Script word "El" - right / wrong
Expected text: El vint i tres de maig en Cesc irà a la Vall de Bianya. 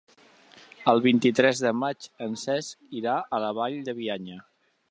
right